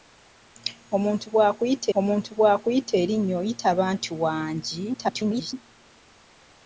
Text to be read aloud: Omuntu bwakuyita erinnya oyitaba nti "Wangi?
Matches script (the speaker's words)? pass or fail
fail